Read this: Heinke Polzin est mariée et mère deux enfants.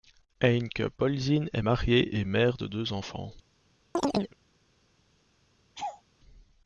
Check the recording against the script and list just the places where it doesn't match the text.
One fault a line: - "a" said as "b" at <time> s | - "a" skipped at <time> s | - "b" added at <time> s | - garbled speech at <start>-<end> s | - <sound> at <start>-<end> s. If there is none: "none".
- "de" added at 2.5 s
- chirp at 3.9-4.4 s
- laugh at 5.8-6.0 s